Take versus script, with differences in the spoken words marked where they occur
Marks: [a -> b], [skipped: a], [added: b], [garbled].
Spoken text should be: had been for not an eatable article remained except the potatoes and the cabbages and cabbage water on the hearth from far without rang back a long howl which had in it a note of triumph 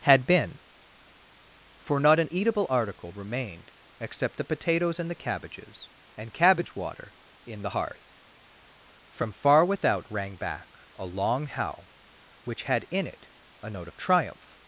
had been for not an eatable article remained except the potatoes and the cabbages and cabbage water [on -> in] the hearth from far without rang back a long howl which had in it a note of triumph